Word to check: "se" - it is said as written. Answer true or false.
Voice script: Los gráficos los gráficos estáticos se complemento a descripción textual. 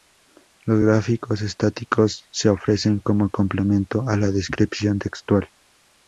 false